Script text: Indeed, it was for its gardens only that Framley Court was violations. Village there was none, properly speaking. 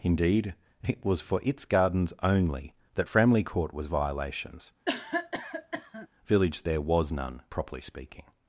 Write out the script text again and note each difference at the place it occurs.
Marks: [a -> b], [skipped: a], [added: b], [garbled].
Indeed, it was for its gardens only that Framley Court was violations. Village there was none, properly speaking.